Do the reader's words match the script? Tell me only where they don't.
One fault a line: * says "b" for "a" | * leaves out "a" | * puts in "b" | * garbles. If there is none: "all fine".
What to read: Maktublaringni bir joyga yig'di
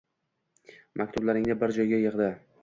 all fine